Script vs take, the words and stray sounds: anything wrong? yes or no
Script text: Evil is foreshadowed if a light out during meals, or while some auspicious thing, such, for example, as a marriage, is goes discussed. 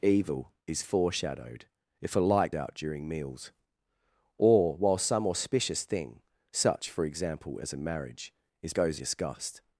no